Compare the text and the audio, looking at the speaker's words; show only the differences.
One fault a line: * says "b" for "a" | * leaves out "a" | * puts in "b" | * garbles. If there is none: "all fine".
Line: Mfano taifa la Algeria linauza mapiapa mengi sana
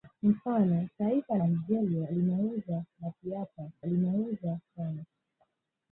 * leaves out "la"
* says "linauza" for "mengi"